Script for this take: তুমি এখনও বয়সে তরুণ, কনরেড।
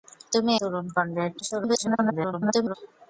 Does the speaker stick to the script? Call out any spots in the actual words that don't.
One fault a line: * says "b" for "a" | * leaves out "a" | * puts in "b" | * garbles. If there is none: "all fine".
* leaves out "এখনও বয়সে"
* garbles